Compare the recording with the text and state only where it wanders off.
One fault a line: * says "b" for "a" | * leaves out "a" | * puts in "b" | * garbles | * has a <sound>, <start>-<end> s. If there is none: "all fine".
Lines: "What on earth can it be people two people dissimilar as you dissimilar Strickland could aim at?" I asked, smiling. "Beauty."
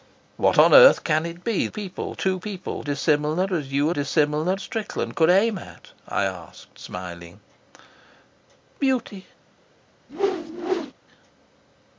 * has a whoosh, 10.1-10.9 s